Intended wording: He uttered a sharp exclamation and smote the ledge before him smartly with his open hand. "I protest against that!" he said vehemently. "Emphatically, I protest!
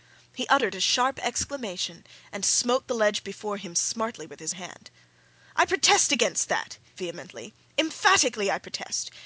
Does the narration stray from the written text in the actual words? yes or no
yes